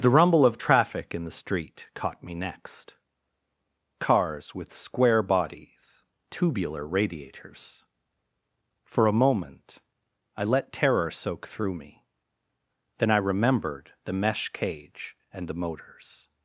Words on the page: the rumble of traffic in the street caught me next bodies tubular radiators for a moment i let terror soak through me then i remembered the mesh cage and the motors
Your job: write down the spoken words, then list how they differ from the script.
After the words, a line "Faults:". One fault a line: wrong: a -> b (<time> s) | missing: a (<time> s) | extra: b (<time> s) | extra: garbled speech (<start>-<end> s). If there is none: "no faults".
the rumble of traffic in the street caught me next cars with square bodies tubular radiators for a moment i let terror soak through me then i remembered the mesh cage and the motors
Faults:
extra: cars with square (4.0 s)